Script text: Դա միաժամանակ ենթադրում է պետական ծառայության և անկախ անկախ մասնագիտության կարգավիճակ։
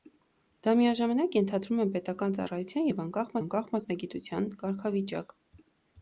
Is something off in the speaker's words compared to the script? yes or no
no